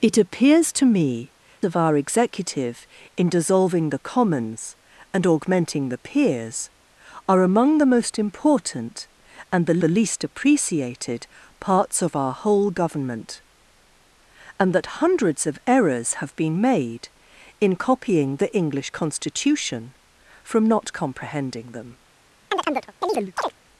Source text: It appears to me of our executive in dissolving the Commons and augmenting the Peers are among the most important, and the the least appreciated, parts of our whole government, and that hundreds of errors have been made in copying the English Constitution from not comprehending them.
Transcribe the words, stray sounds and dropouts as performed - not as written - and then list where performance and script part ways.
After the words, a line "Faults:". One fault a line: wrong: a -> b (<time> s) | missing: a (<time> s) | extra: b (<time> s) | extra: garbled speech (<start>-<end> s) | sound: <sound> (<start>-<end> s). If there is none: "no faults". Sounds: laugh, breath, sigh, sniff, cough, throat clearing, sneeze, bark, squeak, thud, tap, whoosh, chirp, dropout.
It appears to me of our executive in dissolving the Commons and augmenting the Peers are among the most important, and the the least appreciated, parts of our whole government, and that hundreds of errors have been made in copying the English Constitution from not comprehending them.
Faults:
sound: chirp (22.5-23.5 s)